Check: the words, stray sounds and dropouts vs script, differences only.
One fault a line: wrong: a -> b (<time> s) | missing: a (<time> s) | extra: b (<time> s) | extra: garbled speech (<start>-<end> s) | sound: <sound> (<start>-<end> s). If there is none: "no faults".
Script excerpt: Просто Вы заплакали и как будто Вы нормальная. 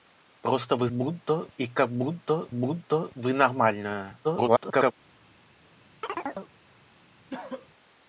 wrong: заплакали -> будто (0.9 s)
extra: будто (2.5 s)
extra: garbled speech (4.2-4.9 s)
sound: chirp (6.0-6.5 s)
sound: cough (7.3-7.7 s)